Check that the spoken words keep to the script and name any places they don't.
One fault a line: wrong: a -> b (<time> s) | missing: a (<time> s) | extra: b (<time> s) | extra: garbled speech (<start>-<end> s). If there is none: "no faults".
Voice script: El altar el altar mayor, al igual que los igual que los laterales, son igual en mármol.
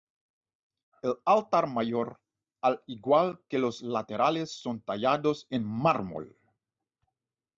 missing: el altar (1.7 s)
missing: igual que los (3.8 s)
wrong: igual -> tallados (4.8 s)